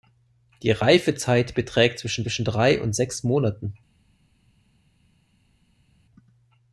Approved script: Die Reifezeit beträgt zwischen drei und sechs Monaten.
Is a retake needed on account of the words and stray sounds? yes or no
yes